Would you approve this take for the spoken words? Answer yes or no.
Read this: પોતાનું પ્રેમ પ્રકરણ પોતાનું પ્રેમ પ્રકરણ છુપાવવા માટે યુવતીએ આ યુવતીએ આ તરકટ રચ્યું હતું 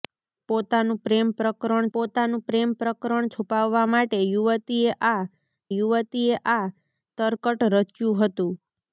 yes